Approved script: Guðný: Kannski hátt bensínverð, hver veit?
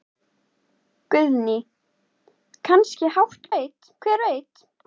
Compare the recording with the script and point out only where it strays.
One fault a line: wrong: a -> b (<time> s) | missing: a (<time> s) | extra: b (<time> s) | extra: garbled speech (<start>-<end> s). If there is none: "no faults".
wrong: bensínverð -> veit (3.6 s)